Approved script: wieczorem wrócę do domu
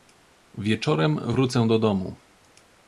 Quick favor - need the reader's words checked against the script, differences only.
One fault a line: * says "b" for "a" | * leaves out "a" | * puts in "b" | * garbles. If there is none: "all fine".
all fine